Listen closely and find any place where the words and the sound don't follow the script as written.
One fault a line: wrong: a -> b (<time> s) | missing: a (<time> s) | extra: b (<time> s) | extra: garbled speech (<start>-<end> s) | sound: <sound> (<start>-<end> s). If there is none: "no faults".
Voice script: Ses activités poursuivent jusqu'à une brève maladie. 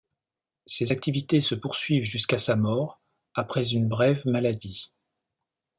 extra: se (1.4 s)
extra: sa mort après (2.4 s)